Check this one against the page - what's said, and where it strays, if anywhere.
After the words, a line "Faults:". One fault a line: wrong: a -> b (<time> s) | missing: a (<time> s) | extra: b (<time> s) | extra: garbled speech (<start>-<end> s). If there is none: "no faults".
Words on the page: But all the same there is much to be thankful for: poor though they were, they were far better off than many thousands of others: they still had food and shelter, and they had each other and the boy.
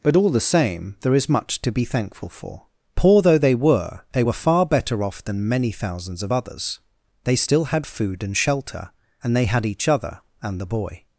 But all the same there is much to be thankful for: poor though they were, they were far better off than many thousands of others: they still had food and shelter, and they had each other and the boy.
Faults:
no faults